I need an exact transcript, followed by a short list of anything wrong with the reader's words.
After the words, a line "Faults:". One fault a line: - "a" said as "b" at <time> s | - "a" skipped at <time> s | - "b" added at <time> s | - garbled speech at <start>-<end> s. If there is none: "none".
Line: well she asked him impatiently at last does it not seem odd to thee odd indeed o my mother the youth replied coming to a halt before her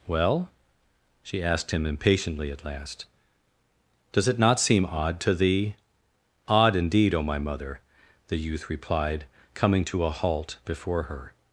well she asked him impatiently at last does it not seem odd to thee odd indeed o my mother the youth replied coming to a halt before her
Faults:
none